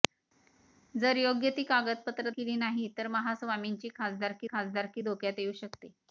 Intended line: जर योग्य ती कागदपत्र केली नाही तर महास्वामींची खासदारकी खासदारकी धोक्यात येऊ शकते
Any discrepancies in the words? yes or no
no